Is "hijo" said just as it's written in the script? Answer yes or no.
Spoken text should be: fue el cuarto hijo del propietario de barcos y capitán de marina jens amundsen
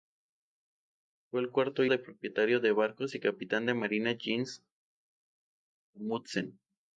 no